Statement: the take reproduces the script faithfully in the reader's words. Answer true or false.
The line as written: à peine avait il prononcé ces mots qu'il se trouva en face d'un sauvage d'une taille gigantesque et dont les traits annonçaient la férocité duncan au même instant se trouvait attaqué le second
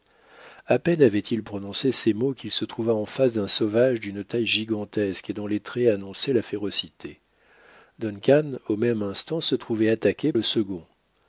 true